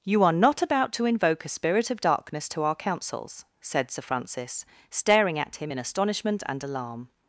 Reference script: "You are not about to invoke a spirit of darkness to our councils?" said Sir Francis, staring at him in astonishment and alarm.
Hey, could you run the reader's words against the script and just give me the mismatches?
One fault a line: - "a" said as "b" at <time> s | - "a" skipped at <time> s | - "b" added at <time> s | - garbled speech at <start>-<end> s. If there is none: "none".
none